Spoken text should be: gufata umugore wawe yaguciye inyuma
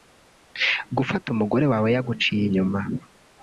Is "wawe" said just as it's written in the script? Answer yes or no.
yes